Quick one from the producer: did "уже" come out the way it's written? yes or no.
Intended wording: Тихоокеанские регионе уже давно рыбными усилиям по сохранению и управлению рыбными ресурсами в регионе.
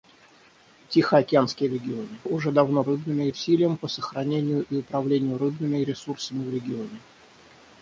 yes